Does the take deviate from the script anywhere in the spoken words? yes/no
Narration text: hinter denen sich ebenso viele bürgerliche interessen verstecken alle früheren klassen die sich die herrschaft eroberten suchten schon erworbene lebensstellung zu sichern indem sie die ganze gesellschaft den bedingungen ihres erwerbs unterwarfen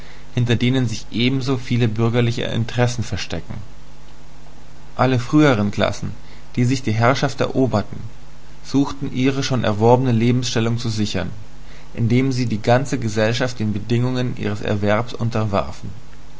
yes